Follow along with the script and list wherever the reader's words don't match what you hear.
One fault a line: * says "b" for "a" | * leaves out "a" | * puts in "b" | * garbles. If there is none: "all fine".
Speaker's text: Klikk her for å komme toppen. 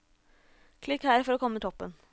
all fine